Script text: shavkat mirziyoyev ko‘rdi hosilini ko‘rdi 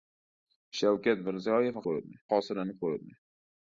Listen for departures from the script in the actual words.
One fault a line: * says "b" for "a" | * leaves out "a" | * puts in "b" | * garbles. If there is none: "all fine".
all fine